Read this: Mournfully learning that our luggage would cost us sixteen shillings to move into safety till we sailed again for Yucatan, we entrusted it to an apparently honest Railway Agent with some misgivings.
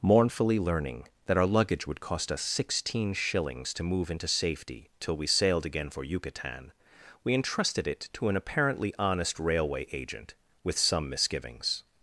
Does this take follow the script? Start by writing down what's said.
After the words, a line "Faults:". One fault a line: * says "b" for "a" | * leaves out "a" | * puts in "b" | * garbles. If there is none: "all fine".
Mournfully learning that our luggage would cost us sixteen shillings to move into safety till we sailed again for Yucatan, we entrusted it to an apparently honest Railway Agent with some misgivings.
Faults:
all fine